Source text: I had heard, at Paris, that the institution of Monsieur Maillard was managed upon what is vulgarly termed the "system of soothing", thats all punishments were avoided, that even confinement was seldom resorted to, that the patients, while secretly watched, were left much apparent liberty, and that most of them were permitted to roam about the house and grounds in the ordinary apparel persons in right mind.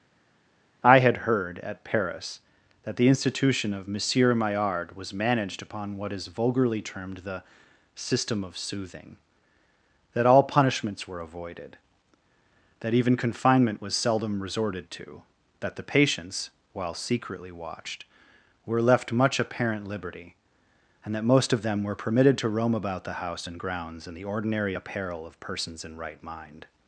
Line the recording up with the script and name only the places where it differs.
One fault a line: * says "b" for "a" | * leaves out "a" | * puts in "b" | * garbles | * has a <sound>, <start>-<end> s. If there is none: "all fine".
* says "that" for "thats"
* puts in "of"